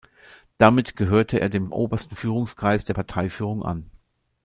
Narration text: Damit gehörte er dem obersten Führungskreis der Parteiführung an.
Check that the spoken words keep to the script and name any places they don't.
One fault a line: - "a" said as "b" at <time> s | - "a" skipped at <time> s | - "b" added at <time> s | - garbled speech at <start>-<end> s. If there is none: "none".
none